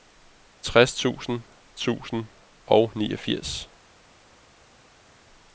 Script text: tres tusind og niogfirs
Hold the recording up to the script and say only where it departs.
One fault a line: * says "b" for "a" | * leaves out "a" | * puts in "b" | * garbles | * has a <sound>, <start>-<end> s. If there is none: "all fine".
* puts in "tusind"